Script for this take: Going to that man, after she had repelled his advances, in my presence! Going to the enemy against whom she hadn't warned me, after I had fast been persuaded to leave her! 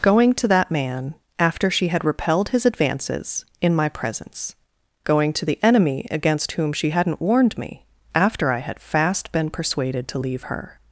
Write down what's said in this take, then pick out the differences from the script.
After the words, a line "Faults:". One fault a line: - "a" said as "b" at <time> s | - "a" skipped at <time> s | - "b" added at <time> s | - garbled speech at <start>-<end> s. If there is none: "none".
Going to that man, after she had repelled his advances, in my presence! Going to the enemy against whom she hadn't warned me, after I had fast been persuaded to leave her!
Faults:
none